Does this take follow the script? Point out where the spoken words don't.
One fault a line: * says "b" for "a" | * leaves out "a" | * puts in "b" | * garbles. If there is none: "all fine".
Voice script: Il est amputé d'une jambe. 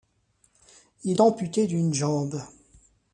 * leaves out "est"